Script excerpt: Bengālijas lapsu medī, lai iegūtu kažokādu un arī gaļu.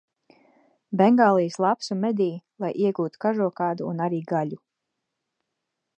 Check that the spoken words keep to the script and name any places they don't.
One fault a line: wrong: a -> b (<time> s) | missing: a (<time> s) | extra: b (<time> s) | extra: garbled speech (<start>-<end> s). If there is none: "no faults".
no faults